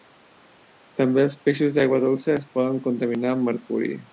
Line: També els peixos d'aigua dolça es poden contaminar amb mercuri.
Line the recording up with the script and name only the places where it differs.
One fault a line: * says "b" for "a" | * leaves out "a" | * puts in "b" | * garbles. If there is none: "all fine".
all fine